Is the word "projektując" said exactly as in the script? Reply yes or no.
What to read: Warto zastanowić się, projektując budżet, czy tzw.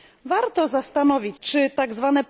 no